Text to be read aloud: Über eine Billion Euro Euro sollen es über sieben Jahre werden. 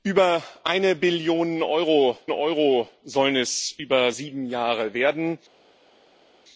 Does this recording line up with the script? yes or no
yes